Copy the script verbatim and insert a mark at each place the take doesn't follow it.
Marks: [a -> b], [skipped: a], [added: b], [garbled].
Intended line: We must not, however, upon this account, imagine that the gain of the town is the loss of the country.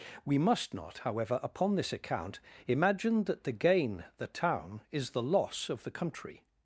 We must not, however, upon this account, imagine that the gain [skipped: of] the town is the loss of the country.